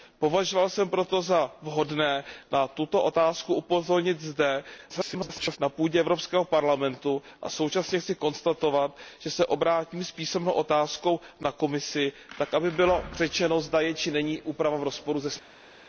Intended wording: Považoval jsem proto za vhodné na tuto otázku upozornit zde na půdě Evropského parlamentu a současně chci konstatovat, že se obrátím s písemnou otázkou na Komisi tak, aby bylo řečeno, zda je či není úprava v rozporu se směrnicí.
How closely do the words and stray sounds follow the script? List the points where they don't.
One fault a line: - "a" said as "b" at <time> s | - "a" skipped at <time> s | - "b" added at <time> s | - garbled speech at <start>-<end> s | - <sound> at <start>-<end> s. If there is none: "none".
- garbled speech at 4.9-5.6 s